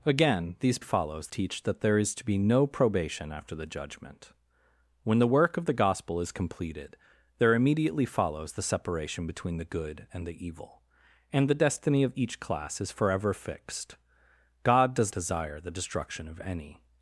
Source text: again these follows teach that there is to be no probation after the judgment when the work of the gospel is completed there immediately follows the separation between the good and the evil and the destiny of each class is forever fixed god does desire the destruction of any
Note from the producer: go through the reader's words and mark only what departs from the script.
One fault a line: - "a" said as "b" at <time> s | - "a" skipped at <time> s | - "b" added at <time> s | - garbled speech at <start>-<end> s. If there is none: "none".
none